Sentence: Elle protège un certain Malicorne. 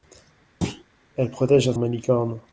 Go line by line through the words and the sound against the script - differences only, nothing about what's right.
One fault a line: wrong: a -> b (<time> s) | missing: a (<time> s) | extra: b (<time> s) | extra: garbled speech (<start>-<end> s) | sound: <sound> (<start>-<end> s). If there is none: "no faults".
sound: thud (0.6-0.8 s)
missing: certain (1.7 s)